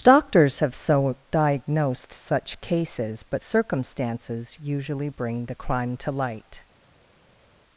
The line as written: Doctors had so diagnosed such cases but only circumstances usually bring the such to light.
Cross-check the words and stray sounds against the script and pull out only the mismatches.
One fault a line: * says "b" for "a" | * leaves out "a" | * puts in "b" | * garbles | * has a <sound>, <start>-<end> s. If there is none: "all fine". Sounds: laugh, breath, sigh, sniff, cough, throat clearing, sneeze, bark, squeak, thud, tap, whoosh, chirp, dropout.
* says "have" for "had"
* leaves out "only"
* says "crime" for "such"